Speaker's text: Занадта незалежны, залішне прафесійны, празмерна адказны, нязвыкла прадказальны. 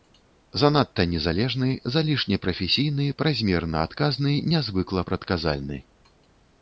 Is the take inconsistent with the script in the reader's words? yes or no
no